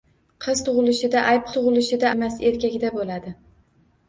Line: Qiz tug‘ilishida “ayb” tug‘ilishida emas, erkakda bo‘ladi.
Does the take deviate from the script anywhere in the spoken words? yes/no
no